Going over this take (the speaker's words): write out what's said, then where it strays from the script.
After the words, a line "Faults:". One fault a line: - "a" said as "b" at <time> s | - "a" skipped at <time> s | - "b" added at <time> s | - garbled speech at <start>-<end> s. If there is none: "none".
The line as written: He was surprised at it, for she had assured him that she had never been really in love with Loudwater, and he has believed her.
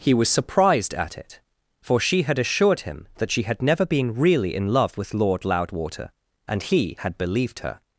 He was surprised at it, for she had assured him that she had never been really in love with Lord Loudwater, and he had believed her.
Faults:
- "Lord" added at 5.1 s
- "has" said as "had" at 7.0 s